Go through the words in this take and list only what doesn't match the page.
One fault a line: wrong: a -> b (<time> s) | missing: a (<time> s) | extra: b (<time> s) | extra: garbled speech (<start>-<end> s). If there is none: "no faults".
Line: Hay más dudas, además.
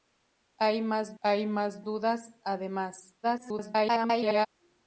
extra: hay más (1.2 s)
extra: garbled speech (3.2-4.5 s)